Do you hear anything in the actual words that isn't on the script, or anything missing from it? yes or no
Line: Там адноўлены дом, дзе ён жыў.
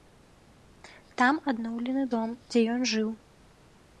no